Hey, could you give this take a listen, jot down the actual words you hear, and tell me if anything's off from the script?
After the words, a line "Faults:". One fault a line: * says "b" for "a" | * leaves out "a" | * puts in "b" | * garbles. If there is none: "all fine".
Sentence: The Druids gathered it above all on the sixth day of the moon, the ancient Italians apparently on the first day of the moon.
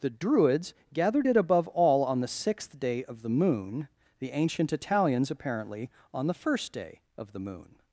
The Druids gathered it above all on the sixth day of the moon, the ancient Italians apparently on the first day of the moon.
Faults:
all fine